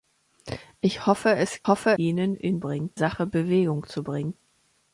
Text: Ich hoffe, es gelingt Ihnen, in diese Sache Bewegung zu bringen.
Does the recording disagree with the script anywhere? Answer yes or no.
yes